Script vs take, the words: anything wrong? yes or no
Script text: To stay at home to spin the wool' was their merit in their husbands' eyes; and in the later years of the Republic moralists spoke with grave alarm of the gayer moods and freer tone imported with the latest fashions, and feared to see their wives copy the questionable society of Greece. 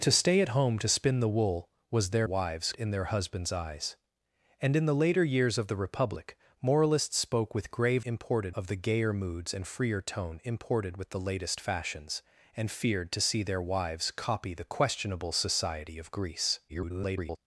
yes